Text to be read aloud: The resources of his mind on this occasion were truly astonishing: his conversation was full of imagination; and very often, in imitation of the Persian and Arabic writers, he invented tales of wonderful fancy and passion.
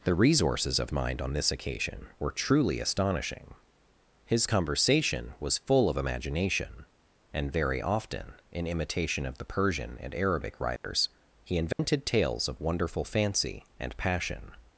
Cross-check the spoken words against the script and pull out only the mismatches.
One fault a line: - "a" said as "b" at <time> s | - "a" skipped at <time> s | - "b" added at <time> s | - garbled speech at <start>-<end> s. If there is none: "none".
- "his" skipped at 0.9 s